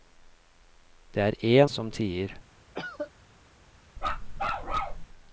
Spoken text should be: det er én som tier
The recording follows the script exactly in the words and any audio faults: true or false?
false